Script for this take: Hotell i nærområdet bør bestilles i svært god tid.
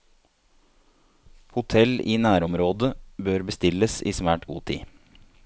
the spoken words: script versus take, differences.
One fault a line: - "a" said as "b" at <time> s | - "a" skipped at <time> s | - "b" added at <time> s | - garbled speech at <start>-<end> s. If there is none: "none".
none